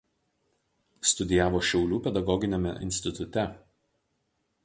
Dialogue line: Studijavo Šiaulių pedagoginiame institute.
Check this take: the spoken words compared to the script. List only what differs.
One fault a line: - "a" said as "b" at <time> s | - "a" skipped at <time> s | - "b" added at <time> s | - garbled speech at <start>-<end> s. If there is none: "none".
none